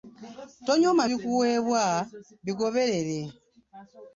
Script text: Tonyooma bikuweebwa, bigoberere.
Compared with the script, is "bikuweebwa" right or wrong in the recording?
right